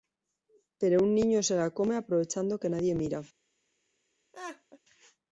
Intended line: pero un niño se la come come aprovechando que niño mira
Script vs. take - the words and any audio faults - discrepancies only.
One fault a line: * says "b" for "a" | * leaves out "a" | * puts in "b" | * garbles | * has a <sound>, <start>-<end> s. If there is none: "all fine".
* leaves out "come"
* says "nadie" for "niño"
* has a laugh, 4.3-4.8 s